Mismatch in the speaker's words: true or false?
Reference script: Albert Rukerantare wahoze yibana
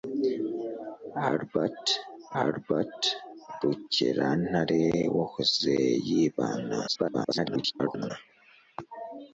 true